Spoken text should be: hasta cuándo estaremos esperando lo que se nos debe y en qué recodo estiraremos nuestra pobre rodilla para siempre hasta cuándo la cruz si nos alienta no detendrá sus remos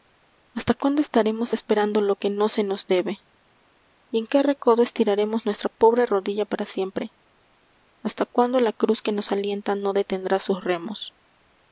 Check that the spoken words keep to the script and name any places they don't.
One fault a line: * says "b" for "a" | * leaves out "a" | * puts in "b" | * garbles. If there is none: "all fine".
* puts in "no"
* says "que" for "si"